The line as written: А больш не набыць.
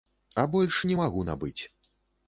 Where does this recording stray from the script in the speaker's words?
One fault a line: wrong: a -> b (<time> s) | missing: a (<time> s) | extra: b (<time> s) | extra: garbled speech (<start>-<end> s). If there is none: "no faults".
extra: магу (1.0 s)